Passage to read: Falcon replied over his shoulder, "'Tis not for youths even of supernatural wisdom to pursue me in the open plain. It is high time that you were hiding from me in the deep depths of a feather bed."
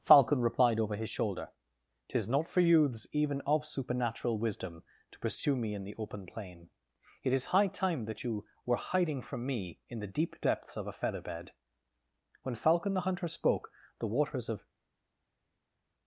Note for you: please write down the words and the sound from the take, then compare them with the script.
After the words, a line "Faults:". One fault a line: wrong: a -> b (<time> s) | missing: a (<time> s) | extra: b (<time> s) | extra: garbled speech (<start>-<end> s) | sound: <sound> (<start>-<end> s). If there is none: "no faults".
Falcon replied over his shoulder, "'Tis not for youths even of supernatural wisdom to pursue me in the open plain. It is high time that you were hiding from me in the deep depths of a feather bed." When Falcon the Hunter spoke, the waters of
Faults:
extra: When Falcon the Hunter spoke the waters of (12.4 s)